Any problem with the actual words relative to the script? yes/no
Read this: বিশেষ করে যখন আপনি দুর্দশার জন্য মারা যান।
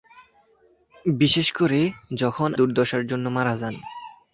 yes